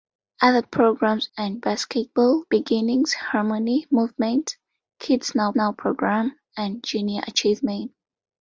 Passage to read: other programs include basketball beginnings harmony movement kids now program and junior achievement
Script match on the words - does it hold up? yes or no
no